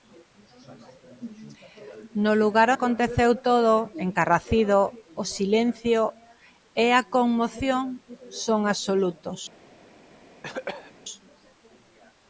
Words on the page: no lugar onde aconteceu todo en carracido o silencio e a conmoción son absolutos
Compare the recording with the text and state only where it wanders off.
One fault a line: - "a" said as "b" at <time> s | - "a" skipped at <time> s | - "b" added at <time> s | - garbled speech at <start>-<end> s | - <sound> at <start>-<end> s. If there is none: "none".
- "onde" skipped at 2.7 s
- cough at 10.4-10.9 s